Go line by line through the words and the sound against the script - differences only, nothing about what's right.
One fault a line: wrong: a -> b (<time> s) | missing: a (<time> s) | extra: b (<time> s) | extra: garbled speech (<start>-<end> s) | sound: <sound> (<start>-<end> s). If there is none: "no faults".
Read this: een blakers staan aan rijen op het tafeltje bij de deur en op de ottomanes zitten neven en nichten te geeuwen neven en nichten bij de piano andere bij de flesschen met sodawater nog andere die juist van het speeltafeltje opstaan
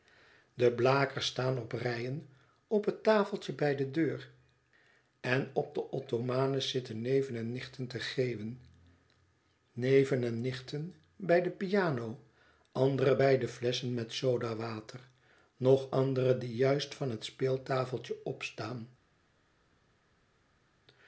wrong: een -> de (0.5 s)
wrong: aan -> op (1.6 s)